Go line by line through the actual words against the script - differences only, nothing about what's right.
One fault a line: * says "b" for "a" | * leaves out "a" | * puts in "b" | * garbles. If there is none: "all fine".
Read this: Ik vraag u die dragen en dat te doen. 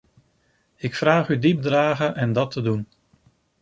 all fine